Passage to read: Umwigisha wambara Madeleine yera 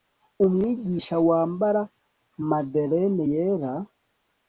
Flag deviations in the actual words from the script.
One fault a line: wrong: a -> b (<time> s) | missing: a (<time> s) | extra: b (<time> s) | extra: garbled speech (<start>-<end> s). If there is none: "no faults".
no faults